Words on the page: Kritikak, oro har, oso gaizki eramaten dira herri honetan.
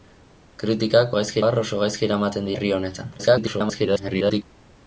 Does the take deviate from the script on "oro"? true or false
true